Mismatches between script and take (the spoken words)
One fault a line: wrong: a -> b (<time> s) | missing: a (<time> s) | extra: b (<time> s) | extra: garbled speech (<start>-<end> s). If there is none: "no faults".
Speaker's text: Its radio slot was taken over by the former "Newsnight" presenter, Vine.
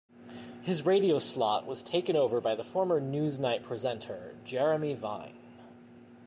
wrong: Its -> His (0.6 s)
extra: Jeremy (4.4 s)